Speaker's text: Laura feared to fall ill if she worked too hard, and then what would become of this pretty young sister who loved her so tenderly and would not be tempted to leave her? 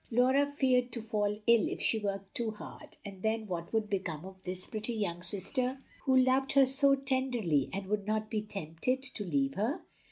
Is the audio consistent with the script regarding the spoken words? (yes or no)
yes